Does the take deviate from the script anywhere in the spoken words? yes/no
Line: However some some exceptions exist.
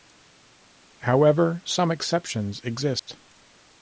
yes